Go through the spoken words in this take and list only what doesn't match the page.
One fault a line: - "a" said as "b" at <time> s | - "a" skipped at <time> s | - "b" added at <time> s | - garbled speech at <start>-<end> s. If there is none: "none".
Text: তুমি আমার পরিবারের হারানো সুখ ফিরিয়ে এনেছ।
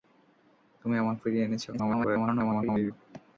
- "পরিবারের হারানো সুখ" skipped at 1.1 s
- garbled speech at 1.7-2.9 s